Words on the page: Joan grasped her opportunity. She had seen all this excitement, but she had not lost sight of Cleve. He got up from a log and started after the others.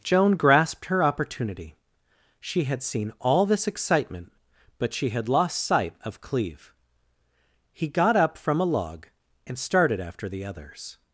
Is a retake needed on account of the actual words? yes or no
yes